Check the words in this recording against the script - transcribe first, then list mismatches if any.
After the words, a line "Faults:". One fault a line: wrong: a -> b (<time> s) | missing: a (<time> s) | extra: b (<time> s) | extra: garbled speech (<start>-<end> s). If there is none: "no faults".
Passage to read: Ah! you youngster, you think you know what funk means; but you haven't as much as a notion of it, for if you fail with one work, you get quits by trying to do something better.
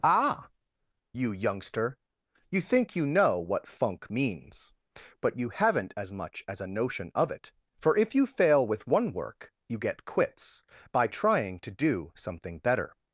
Ah! you youngster, you think you know what funk means; but you haven't as much as a notion of it, for if you fail with one work, you get quits by trying to do something better.
Faults:
no faults